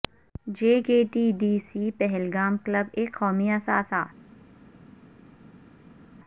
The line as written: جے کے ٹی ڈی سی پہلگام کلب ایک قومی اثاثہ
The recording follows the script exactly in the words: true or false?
true